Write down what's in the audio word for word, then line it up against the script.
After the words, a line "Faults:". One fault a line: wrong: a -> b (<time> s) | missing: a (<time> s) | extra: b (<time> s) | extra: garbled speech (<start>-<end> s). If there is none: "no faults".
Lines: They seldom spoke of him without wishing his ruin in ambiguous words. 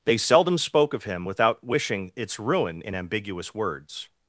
They seldom spoke of him without wishing its ruin in ambiguous words.
Faults:
wrong: his -> its (2.1 s)